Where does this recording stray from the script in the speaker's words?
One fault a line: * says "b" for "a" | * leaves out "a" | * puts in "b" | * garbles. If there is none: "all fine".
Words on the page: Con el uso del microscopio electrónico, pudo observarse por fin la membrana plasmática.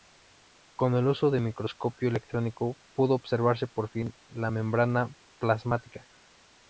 all fine